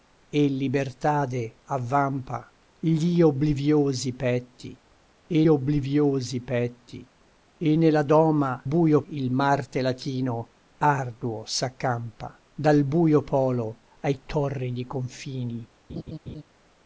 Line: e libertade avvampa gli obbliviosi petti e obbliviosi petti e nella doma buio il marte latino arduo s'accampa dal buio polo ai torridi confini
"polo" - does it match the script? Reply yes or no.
yes